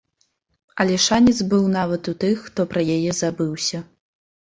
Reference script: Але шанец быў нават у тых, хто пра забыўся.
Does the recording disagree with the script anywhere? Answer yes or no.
yes